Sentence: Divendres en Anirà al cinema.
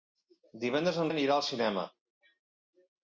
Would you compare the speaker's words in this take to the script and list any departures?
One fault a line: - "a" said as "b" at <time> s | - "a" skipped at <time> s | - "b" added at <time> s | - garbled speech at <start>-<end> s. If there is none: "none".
none